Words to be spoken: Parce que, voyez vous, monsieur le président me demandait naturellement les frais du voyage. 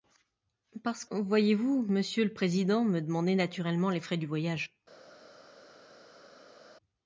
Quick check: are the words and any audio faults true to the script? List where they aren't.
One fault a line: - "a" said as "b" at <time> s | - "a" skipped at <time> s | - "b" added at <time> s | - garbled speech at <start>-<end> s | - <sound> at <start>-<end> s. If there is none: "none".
- "que" skipped at 1.1 s